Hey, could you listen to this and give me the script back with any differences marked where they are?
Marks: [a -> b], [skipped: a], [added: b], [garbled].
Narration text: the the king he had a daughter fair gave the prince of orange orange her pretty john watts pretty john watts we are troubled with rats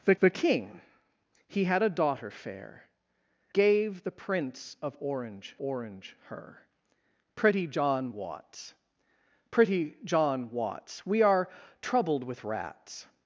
the the king he had a daughter fair gave the prince of orange orange her pretty john watts pretty john watts we are troubled with rats